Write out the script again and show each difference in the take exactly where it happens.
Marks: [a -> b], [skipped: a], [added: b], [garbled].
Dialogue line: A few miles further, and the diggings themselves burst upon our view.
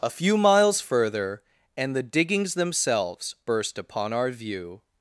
A few miles further, and the diggings themselves burst upon our view.